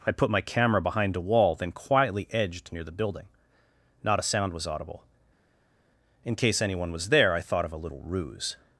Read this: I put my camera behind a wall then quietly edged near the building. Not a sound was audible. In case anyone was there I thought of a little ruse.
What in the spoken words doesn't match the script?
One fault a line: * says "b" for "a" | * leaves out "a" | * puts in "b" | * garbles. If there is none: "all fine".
all fine